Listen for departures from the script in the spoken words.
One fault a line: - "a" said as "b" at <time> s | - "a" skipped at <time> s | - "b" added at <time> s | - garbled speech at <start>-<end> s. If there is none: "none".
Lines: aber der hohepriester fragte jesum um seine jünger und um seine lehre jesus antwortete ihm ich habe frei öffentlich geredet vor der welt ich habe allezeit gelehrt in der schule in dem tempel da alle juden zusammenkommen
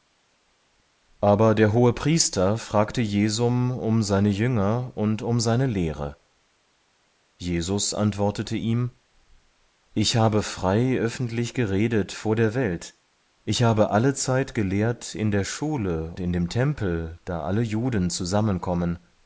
none